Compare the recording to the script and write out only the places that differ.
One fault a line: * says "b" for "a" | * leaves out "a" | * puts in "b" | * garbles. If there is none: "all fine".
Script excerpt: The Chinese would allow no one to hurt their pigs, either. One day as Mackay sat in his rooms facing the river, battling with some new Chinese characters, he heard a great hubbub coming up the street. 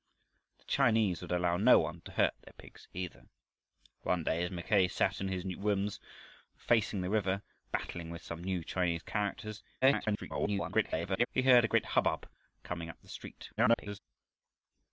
* garbles
* garbles